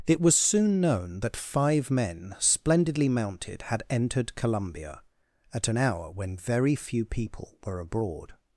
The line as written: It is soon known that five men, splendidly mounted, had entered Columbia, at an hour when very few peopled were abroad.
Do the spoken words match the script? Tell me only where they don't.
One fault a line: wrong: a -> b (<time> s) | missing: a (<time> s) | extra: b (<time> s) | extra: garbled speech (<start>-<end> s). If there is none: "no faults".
wrong: is -> was (0.2 s)
wrong: peopled -> people (7.0 s)